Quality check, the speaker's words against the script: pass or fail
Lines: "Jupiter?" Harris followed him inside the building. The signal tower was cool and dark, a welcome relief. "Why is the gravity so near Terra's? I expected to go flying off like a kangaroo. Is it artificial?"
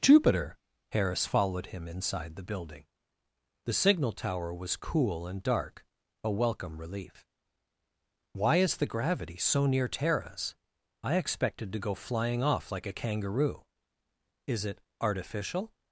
pass